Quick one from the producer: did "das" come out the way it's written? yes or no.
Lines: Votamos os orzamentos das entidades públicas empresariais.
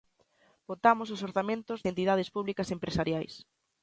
no